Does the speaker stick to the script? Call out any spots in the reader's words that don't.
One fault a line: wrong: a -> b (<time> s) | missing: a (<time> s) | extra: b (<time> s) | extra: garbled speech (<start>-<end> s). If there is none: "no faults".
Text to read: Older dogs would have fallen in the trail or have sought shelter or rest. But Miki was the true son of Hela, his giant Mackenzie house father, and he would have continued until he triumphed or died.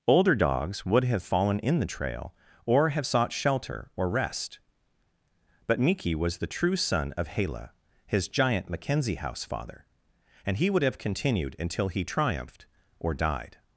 no faults